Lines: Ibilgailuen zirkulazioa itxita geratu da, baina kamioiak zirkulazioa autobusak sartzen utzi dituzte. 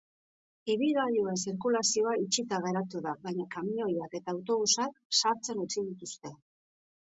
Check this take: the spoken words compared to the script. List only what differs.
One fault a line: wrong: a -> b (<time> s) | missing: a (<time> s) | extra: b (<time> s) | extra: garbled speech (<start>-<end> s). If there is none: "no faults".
wrong: zirkulazioa -> eta (4.2 s)